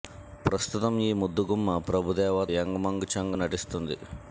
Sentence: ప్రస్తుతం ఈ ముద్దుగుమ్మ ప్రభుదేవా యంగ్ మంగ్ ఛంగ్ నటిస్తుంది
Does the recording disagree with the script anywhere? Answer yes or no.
no